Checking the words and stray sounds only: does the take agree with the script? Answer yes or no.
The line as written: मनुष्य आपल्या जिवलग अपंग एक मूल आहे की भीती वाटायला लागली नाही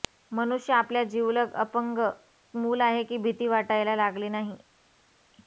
no